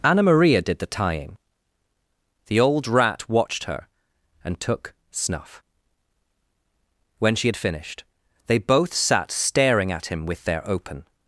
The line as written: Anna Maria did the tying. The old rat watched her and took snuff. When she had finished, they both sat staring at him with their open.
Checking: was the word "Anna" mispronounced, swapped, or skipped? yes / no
no